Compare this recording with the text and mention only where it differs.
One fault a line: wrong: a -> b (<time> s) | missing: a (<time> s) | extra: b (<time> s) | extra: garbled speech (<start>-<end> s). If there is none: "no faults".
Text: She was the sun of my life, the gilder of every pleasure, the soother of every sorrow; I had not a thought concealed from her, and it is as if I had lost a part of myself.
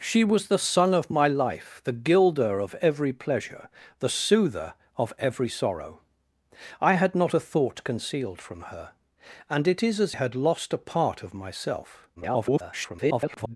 missing: if I (10.2 s)
extra: garbled speech (12.2-13.6 s)